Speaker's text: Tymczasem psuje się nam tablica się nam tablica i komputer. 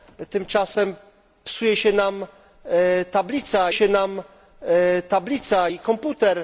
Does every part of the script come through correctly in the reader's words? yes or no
yes